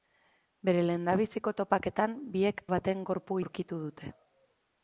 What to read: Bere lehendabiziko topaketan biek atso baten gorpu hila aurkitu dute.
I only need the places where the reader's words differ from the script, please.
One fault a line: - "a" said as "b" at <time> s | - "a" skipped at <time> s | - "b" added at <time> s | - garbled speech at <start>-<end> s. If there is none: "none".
- "atso" skipped at 2.6 s
- "hila" skipped at 3.4 s